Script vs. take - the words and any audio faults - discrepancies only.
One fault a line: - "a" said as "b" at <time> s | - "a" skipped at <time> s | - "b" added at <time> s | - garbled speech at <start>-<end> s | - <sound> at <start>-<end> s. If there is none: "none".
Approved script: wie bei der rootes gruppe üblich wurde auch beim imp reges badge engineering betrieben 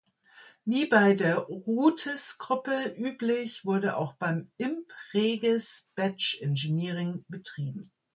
none